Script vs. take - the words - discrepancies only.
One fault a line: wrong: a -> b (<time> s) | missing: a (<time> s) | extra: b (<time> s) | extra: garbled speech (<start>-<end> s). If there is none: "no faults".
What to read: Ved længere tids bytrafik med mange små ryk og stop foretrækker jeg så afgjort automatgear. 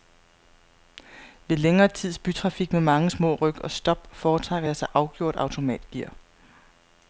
no faults